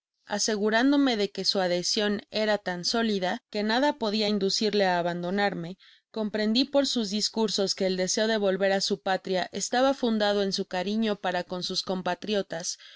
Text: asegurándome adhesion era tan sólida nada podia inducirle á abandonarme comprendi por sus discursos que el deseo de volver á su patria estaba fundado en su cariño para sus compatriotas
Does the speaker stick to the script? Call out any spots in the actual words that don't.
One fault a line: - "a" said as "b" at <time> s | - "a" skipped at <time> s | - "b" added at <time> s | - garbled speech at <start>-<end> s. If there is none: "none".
- "de que su" added at 1.1 s
- "que" added at 3.5 s
- "con" added at 11.4 s